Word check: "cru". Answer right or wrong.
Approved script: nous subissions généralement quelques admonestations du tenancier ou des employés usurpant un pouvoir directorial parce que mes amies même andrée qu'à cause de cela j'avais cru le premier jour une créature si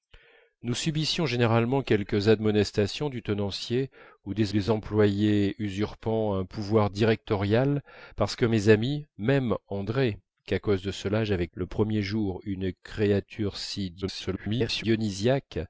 wrong